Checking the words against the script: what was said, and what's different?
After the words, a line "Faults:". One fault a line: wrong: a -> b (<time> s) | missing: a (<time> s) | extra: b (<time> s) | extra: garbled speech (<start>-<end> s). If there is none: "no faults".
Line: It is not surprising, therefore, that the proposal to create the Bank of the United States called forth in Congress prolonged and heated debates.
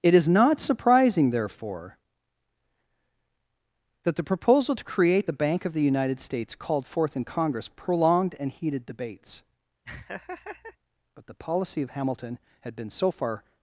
It is not surprising, therefore, that the proposal to create the Bank of the United States called forth in Congress prolonged and heated debates. But the policy of Hamilton had been so far
Faults:
extra: But the policy of Hamilton had been so far (11.1 s)